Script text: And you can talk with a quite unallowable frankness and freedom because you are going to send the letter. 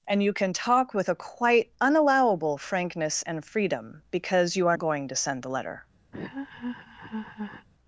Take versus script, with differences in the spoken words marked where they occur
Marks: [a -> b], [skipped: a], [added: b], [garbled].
And you can talk with a quite unallowable frankness and freedom because you are going to send the letter.